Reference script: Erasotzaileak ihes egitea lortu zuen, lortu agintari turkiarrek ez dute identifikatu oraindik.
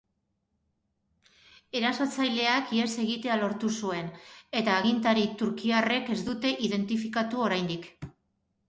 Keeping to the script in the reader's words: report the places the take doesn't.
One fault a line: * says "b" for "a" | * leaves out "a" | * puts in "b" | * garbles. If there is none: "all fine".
* says "eta" for "lortu"